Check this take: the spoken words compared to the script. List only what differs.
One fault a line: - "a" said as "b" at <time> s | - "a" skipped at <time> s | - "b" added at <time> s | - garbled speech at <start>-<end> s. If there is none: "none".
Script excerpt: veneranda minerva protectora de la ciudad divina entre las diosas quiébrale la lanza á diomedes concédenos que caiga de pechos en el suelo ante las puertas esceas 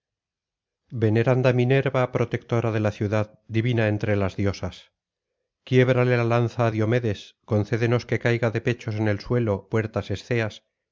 - "ante las" skipped at 9.7 s